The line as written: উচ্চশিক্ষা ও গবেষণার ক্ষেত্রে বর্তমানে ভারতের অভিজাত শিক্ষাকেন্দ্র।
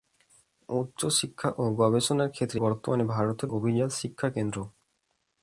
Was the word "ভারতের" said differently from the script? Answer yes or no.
no